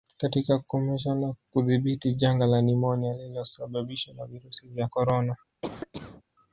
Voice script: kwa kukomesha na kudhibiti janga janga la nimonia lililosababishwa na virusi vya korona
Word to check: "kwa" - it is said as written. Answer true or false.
false